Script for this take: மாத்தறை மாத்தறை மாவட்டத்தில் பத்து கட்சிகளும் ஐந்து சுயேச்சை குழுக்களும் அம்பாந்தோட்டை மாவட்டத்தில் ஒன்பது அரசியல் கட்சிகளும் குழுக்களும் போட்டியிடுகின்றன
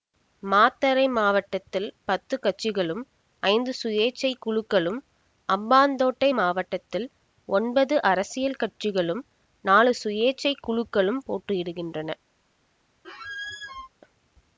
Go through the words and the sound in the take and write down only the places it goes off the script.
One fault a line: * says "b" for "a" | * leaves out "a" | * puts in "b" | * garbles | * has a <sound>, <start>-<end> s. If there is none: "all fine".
* leaves out "மாத்தறை"
* puts in "நாலு சுயேச்சை"
* has a squeak, 13.0-13.9 s